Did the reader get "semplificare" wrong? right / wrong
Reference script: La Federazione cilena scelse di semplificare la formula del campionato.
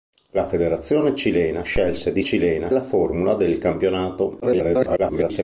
wrong